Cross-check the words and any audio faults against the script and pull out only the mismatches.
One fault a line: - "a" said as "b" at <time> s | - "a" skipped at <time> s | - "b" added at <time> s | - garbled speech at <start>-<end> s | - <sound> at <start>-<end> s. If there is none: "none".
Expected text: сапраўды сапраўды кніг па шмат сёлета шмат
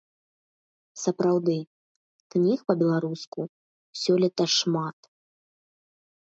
- "сапраўды" skipped at 1.6 s
- "шмат" said as "беларуску" at 2.8 s